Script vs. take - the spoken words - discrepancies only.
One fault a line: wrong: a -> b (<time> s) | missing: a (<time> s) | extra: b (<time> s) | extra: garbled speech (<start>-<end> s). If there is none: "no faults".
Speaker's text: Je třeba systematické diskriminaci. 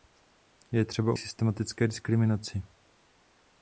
no faults